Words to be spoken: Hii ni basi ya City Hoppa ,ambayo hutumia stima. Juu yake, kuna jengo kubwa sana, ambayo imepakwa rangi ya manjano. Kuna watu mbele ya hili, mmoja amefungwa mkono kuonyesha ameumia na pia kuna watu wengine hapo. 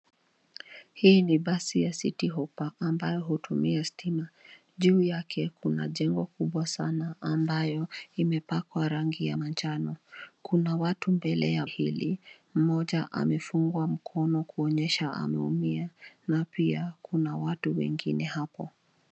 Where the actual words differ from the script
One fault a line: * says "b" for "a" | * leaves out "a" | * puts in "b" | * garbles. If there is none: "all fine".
all fine